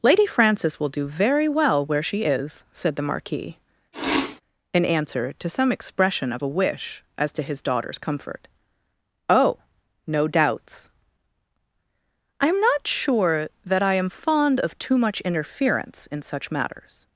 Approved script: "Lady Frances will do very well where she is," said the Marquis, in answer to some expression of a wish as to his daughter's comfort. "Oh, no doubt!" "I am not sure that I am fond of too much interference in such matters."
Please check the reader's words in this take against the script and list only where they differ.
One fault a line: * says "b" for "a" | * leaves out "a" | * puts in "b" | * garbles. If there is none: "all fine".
* says "doubts" for "doubt"